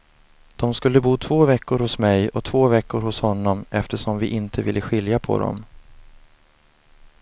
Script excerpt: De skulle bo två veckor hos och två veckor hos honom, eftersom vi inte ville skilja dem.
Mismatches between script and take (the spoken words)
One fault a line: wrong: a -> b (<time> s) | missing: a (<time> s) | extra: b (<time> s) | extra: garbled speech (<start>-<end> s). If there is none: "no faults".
extra: mig (2.0 s)
extra: på (5.2 s)